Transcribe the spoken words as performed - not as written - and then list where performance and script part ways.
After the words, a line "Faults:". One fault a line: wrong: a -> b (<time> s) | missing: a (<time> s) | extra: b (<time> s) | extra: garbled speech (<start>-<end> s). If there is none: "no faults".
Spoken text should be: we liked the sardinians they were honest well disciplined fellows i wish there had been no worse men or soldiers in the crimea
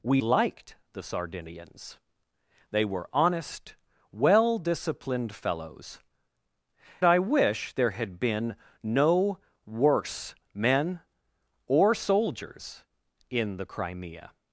we liked the sardinians they were honest well disciplined fellows i wish there had been no worse men or soldiers in the crimea
Faults:
no faults